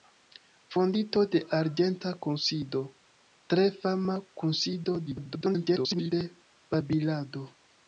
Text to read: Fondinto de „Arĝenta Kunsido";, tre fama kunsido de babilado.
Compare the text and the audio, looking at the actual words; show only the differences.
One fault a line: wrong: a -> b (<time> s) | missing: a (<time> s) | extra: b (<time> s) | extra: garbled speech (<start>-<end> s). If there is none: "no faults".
extra: garbled speech (5.1-6.1 s)